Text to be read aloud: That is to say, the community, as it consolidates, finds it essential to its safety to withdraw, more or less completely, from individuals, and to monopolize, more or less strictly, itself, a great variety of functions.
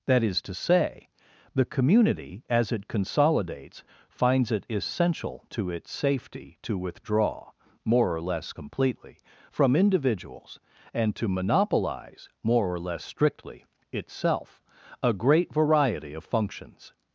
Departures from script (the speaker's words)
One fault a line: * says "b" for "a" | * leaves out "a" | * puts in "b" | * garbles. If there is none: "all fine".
all fine